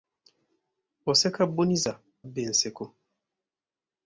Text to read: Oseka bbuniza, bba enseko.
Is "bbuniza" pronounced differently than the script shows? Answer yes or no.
no